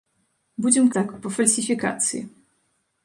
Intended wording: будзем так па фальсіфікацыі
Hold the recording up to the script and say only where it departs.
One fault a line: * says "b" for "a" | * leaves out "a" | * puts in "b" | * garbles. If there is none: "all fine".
all fine